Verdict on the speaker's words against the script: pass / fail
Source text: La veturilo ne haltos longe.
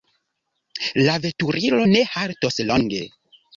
pass